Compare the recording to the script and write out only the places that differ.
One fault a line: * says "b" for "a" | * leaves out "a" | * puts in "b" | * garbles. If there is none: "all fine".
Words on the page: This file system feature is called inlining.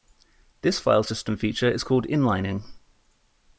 all fine